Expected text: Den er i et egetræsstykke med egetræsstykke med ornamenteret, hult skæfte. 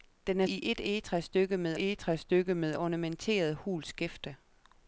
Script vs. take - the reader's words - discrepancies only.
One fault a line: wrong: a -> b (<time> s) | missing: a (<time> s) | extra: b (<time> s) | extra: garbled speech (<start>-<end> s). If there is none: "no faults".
no faults